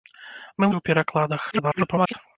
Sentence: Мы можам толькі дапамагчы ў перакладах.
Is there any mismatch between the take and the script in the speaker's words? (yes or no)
yes